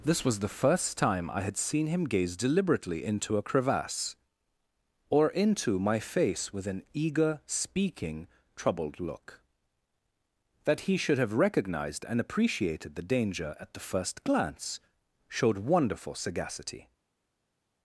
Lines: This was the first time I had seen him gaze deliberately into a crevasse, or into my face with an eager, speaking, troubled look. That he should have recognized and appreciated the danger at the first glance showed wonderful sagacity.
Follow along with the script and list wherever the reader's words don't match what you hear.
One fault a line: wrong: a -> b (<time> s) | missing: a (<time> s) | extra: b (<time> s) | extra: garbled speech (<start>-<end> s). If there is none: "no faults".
no faults